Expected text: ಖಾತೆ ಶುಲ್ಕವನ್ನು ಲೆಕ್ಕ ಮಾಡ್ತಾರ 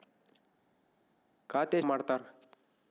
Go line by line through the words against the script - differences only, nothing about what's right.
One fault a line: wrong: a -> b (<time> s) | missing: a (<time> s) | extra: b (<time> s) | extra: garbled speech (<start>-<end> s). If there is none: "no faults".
missing: ಶುಲ್ಕವನ್ನು ಲೆಕ್ಕ (1.8 s)